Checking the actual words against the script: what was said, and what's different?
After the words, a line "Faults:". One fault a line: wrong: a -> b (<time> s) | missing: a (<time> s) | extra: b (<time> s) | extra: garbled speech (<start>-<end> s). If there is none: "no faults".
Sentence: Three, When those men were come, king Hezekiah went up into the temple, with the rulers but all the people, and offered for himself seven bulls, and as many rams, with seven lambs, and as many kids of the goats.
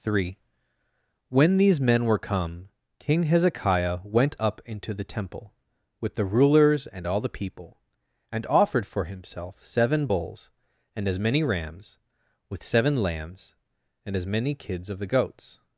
Three, When these men were come, king Hezekiah went up into the temple, with the rulers and all the people, and offered for himself seven bulls, and as many rams, with seven lambs, and as many kids of the goats.
Faults:
wrong: those -> these (1.6 s)
wrong: but -> and (6.9 s)